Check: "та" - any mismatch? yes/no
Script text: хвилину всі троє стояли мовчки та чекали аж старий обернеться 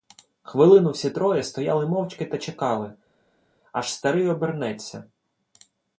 no